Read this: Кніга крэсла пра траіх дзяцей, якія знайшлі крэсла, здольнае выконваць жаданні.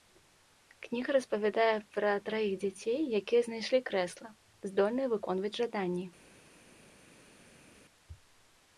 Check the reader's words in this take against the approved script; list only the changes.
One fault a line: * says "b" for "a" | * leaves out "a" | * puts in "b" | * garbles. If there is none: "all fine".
* says "распавядае" for "крэсла"